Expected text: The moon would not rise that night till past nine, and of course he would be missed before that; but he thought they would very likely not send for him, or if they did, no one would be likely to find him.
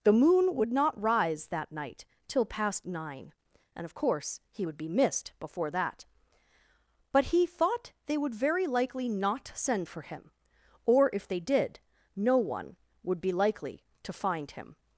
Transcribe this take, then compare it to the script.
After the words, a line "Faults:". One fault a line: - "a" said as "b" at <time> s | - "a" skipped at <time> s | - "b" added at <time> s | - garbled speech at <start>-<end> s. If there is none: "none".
The moon would not rise that night till past nine, and of course he would be missed before that; but he thought they would very likely not send for him, or if they did, no one would be likely to find him.
Faults:
none